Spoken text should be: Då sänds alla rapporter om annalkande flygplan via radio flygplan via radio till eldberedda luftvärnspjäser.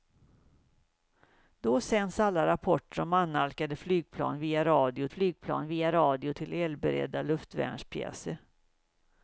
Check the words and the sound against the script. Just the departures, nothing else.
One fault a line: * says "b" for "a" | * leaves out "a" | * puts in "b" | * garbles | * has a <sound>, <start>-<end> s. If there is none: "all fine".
all fine